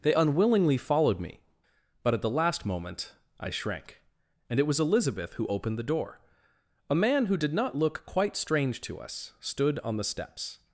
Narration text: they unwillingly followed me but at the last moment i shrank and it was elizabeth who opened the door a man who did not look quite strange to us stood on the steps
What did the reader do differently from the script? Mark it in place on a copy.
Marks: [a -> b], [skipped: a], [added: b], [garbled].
they unwillingly followed me but at the last moment i shrank and it was elizabeth who opened the door a man who did not look quite strange to us stood on the steps